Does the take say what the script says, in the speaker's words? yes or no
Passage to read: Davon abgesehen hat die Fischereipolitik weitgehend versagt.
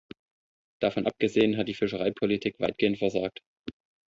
yes